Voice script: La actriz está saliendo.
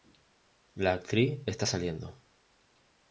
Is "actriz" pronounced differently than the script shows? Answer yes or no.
no